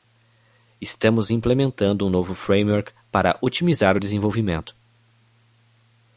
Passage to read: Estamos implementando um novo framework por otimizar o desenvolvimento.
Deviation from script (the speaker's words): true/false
true